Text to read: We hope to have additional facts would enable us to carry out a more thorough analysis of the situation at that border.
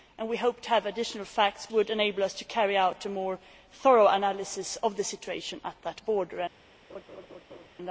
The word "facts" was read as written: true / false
true